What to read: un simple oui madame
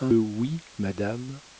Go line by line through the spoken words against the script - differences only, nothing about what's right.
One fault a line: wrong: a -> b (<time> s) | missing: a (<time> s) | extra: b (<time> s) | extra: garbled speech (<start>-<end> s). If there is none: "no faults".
missing: simple (0.1 s)